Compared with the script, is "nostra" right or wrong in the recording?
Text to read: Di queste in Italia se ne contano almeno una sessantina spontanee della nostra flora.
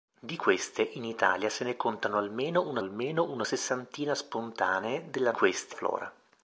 wrong